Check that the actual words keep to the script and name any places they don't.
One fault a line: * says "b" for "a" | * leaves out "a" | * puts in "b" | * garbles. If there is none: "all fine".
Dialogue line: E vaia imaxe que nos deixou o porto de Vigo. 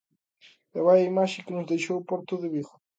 all fine